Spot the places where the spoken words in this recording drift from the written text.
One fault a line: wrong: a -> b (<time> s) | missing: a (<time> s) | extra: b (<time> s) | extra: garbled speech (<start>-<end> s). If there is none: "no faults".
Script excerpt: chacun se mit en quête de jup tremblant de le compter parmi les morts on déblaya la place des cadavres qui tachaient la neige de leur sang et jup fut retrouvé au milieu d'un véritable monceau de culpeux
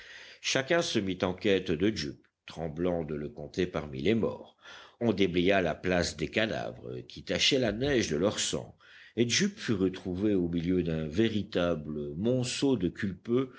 no faults